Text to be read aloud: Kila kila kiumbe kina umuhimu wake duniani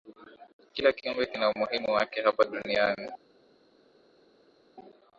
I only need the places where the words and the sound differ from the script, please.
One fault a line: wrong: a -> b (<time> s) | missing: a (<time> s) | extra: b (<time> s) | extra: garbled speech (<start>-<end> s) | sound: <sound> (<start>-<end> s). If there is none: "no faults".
missing: kila (0.9 s)
extra: hapa (2.2 s)